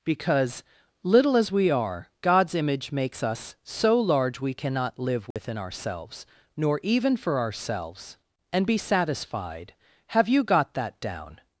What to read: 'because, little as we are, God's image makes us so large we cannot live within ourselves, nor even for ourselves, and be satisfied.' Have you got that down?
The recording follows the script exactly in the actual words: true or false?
true